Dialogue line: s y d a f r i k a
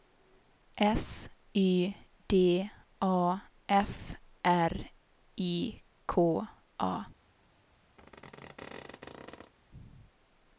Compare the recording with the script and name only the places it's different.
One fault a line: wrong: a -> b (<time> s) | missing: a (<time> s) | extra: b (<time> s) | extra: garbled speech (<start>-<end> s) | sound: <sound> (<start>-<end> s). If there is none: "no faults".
sound: squeak (8.0-9.5 s)